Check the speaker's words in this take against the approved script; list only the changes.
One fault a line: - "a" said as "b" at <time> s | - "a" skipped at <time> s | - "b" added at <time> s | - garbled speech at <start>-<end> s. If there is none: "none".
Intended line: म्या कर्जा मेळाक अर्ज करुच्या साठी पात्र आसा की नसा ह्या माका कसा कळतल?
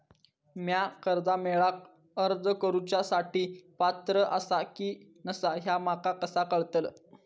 none